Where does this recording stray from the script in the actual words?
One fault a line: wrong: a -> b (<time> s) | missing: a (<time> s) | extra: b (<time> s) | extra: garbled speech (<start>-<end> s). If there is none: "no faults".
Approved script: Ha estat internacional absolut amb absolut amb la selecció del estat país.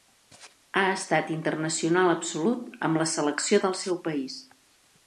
missing: absolut amb (3.0 s)
wrong: estat -> seu (3.9 s)